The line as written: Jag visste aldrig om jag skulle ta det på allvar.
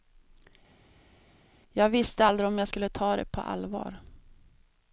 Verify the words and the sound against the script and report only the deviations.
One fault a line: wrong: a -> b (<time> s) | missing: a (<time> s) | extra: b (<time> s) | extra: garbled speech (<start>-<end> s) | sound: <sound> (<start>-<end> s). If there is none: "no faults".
no faults